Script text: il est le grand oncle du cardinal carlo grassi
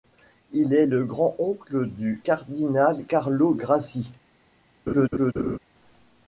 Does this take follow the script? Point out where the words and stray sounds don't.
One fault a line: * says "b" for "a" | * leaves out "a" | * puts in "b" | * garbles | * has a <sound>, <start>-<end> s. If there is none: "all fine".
* has a laugh, 4.9-5.6 s